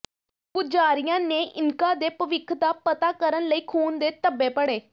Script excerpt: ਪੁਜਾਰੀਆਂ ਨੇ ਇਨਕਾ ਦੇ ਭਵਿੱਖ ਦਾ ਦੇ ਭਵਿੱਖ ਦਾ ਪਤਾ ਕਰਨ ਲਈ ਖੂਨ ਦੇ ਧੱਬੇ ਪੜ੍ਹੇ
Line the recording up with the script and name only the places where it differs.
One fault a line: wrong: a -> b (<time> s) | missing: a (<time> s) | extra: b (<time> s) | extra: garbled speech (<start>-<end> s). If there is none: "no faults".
missing: ਦੇ ਭਵਿੱਖ ਦਾ (2.7 s)